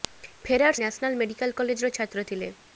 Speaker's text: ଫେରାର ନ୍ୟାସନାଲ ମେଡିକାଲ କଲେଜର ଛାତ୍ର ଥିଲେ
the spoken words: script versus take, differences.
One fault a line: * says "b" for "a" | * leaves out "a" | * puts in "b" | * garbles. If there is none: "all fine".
all fine